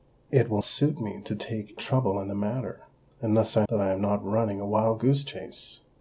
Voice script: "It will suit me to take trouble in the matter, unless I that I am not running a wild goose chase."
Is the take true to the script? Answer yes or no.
yes